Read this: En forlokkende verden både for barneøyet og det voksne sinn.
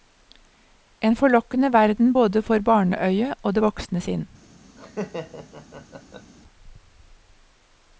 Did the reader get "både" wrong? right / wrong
right